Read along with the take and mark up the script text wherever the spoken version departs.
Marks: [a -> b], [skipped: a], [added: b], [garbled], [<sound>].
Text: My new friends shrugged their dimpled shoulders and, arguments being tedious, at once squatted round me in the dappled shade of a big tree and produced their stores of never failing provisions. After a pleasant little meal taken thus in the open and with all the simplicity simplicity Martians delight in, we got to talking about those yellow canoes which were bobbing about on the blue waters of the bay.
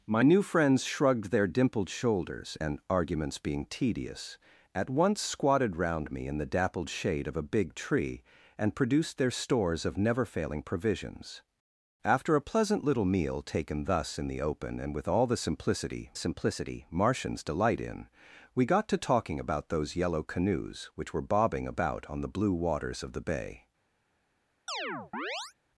My new friends shrugged their dimpled shoulders and, arguments being tedious, at once squatted round me in the dappled shade of a big tree and produced their stores of never failing provisions. After a pleasant little meal taken thus in the open and with all the simplicity simplicity Martians delight in, we got to talking about those yellow canoes which were bobbing about on the blue waters of the bay. [chirp]